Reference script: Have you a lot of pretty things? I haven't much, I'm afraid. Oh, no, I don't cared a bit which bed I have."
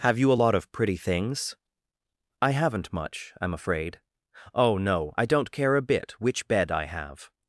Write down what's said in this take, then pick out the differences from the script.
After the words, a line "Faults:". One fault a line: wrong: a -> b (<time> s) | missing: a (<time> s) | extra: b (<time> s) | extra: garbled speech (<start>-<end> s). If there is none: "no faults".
Have you a lot of pretty things? I haven't much, I'm afraid. Oh, no, I don't care a bit which bed I have."
Faults:
wrong: cared -> care (5.5 s)